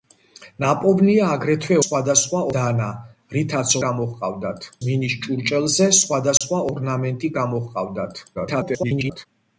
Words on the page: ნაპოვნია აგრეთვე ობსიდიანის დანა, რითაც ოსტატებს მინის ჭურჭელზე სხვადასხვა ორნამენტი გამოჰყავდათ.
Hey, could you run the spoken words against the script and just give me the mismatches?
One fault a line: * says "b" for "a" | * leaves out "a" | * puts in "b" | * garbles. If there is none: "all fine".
* says "სხვადასხვა" for "ობსიდიანის"
* says "გამოჰყავდათ" for "ოსტატებს"
* garbles